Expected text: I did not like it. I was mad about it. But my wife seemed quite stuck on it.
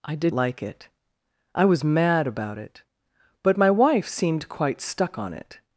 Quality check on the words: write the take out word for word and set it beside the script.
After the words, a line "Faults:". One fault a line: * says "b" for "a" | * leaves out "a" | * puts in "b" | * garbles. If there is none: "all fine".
I did like it. I was mad about it. But my wife seemed quite stuck on it.
Faults:
* leaves out "not"